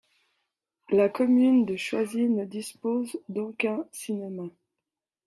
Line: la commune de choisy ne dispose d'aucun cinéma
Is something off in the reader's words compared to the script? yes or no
no